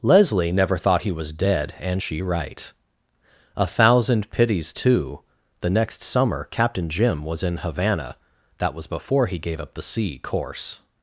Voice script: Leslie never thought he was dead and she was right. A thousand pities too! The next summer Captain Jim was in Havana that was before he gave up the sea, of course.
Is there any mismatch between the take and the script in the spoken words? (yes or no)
yes